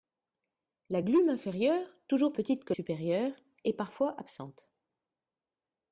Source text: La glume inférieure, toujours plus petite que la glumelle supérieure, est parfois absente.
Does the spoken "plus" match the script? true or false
false